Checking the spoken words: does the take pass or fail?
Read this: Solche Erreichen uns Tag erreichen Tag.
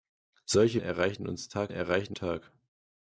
pass